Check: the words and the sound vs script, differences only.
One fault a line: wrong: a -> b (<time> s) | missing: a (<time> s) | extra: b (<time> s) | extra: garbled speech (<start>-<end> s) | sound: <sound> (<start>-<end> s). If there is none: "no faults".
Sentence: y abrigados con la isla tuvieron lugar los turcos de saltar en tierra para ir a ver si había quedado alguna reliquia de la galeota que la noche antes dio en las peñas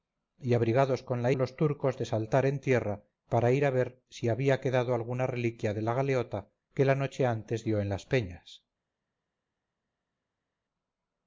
missing: isla tuvieron lugar (1.3 s)